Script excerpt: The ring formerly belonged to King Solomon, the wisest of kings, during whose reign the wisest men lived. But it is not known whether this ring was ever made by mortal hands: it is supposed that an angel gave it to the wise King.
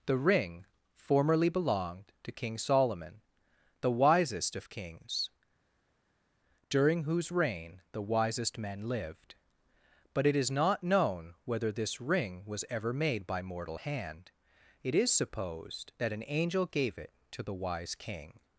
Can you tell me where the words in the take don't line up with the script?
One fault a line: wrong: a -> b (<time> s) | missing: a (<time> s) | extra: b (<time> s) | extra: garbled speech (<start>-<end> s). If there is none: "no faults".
wrong: hands -> hand (13.7 s)